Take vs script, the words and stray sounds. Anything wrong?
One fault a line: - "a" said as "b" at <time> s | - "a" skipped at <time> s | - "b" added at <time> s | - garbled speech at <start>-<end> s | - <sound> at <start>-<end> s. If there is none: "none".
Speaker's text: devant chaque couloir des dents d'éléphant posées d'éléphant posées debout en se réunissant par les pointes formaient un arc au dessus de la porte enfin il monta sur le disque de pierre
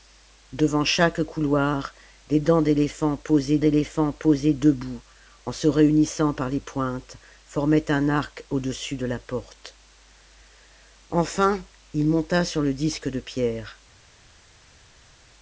none